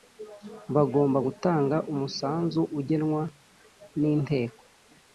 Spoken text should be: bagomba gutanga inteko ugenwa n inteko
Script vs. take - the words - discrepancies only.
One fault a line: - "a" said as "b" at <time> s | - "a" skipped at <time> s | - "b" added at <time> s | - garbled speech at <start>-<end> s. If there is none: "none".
- "inteko" said as "umusanzu" at 1.9 s